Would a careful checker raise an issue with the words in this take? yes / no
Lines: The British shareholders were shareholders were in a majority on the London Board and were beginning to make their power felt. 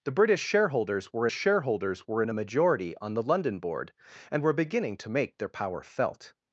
no